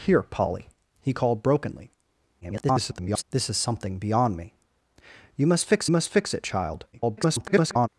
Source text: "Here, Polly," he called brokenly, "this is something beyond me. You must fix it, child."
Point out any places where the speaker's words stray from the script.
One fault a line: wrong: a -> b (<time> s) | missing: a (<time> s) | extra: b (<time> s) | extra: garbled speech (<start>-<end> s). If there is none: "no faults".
extra: garbled speech (2.4-3.2 s)
extra: must fix (5.9 s)
extra: garbled speech (6.9-7.9 s)